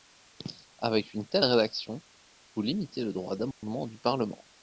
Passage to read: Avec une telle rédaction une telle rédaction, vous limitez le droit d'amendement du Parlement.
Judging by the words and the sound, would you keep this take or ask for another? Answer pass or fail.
fail